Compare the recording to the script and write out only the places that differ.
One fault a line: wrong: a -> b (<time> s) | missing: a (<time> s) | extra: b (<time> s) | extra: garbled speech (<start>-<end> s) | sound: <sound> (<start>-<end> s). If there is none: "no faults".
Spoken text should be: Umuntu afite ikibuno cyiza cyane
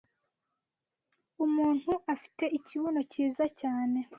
no faults